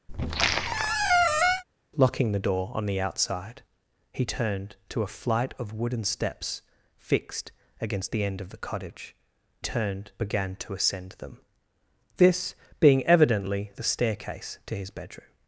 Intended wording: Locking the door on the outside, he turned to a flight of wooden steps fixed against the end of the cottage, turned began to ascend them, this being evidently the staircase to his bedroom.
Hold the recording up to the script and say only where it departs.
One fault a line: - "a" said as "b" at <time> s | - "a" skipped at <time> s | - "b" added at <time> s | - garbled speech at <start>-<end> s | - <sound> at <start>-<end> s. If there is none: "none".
- squeak at 0.1-1.6 s